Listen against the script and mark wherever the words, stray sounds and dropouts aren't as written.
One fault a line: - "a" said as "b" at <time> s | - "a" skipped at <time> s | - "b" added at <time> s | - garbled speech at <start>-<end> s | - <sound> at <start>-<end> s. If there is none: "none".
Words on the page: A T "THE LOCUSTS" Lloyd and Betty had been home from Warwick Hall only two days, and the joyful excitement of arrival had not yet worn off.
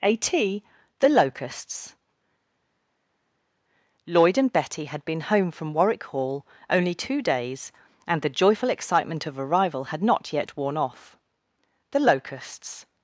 - "The Locusts" added at 11.9 s